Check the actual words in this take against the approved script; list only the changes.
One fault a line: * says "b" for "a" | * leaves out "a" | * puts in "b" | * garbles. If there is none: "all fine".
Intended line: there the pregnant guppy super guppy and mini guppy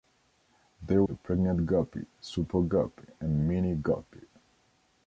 all fine